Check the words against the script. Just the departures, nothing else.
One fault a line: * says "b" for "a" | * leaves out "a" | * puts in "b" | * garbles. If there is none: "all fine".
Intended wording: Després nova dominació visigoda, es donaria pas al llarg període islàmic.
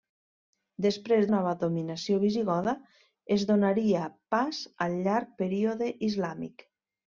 all fine